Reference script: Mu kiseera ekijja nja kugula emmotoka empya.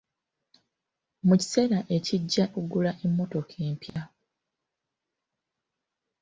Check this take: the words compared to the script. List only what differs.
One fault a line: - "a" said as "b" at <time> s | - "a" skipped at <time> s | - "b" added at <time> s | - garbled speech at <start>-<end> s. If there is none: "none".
- "nja" skipped at 2.4 s